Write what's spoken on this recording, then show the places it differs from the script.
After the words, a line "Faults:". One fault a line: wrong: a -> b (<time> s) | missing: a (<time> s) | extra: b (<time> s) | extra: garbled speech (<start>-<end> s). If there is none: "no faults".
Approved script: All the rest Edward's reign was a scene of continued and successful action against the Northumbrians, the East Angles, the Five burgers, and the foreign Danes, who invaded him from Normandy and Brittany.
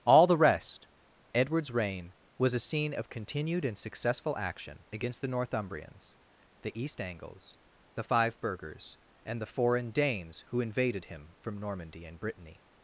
All the rest Edward's reign was a scene of continued and successful action against the Northumbrians, the East Angles, the Five burgers, and the foreign Danes, who invaded him from Normandy and Brittany.
Faults:
no faults